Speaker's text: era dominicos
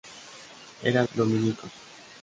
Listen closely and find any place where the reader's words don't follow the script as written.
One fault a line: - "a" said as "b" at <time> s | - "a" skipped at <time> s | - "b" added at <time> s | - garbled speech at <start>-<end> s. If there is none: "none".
none